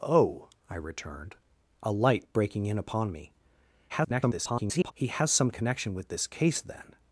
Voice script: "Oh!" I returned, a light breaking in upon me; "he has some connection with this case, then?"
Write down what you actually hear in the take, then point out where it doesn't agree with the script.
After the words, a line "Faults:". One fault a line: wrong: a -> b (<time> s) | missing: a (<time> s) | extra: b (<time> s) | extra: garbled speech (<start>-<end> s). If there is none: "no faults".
"Oh!" I returned, a light breaking in upon me; [garbled] "he has some connection with this case, then?"
Faults:
extra: garbled speech (3.9-4.9 s)